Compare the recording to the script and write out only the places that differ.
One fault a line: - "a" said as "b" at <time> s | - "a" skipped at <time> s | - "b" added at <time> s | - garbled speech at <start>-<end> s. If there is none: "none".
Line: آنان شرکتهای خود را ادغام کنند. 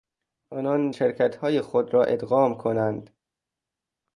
none